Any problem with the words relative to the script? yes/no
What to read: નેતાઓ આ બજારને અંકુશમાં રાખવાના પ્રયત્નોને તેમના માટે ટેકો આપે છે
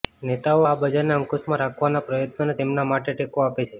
no